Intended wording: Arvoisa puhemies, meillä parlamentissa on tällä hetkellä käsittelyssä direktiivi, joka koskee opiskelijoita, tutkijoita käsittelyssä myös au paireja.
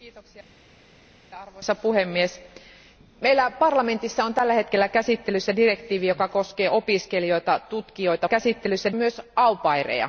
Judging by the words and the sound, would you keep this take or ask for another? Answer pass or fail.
pass